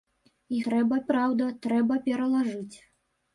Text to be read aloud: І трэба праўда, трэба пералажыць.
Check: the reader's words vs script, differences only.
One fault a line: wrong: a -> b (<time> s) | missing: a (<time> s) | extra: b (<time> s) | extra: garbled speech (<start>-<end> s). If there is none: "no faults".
no faults